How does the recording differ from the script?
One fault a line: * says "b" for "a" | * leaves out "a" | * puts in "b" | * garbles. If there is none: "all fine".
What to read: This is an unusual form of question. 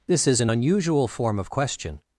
all fine